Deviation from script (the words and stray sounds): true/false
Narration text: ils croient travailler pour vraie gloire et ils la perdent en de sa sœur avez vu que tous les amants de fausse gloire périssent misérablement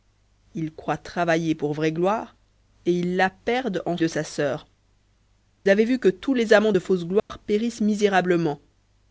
true